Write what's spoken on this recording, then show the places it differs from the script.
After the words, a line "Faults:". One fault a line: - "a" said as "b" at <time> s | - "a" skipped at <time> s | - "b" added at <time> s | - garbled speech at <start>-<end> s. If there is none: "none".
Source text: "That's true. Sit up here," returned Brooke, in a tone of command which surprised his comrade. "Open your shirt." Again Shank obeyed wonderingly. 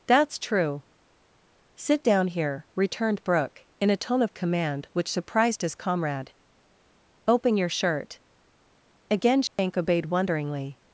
"That's true. Sit down here," returned Brooke, in a tone of command which surprised his comrade. "Open your shirt." Again Shank obeyed wonderingly.
Faults:
- "up" said as "down" at 2.0 s